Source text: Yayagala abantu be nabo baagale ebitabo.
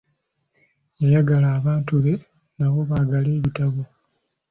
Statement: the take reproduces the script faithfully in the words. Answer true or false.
true